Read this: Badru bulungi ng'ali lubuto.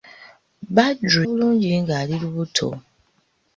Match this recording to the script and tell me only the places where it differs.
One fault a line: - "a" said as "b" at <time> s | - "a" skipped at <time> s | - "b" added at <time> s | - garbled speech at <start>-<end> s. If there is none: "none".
none